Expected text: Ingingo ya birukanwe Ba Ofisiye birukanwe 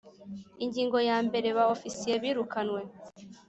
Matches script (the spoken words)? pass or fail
fail